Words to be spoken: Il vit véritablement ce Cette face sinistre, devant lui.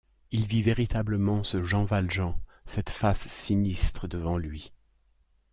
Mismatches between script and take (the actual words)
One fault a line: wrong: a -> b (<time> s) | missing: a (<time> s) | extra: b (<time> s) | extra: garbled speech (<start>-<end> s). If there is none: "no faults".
extra: Jean Valjean (1.6 s)